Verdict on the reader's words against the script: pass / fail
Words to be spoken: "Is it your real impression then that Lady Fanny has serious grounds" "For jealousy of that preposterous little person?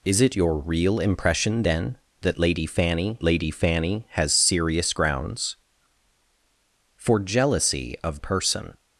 fail